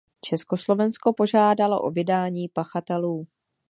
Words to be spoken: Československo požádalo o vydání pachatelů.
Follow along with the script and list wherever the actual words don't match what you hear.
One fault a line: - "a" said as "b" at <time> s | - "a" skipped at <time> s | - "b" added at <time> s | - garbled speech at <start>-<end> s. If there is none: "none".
none